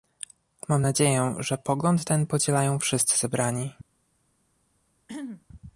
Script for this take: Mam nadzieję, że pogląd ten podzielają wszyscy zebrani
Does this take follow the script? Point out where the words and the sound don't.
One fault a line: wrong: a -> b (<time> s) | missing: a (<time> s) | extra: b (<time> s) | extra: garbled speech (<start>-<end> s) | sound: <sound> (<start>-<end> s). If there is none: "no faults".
sound: throat clearing (5.1-5.5 s)